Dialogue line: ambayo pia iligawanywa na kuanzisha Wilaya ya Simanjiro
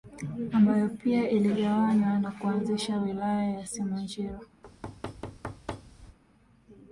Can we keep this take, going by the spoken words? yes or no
yes